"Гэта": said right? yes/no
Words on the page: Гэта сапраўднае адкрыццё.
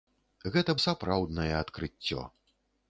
yes